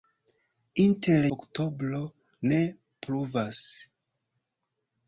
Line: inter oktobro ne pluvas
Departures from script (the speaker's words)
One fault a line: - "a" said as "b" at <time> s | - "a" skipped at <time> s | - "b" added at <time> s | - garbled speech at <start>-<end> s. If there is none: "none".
none